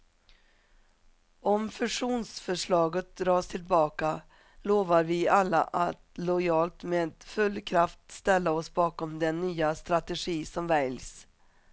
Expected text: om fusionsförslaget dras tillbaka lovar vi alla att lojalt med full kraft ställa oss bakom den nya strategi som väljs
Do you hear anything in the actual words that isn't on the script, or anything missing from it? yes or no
no